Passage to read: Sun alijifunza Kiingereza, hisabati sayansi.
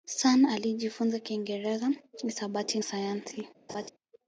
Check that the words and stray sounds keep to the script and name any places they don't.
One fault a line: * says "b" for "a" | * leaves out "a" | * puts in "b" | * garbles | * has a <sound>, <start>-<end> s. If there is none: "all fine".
* has a laugh, 3.7-3.9 s